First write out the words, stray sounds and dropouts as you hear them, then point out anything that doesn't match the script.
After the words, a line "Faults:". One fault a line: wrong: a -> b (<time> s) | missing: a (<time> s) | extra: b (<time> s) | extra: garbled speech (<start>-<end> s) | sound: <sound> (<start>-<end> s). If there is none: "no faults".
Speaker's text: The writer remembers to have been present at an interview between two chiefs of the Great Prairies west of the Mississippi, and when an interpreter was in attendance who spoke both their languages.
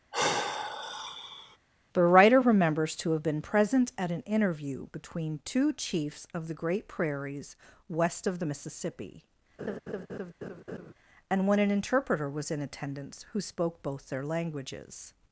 The writer remembers to have been present at an interview between two chiefs of the Great Prairies west of the Mississippi, and when an interpreter was in attendance who spoke both their languages.
Faults:
sound: sigh (0.1-1.6 s)
sound: laugh (9.6-10.9 s)